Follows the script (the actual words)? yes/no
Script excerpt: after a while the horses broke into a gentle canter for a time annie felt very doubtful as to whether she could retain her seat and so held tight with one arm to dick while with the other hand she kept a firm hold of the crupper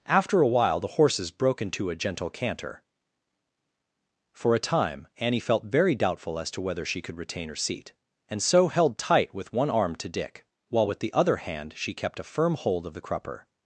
yes